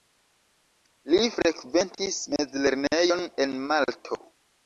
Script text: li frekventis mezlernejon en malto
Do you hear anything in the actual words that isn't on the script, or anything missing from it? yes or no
no